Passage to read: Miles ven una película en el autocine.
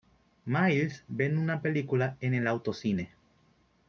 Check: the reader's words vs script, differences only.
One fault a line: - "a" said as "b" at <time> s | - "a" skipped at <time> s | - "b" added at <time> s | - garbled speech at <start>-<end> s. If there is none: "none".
none